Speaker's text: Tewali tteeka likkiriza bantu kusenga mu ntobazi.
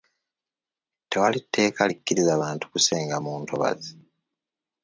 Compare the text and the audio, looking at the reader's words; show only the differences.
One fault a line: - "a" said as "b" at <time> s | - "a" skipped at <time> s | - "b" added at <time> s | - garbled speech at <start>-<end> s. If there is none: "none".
none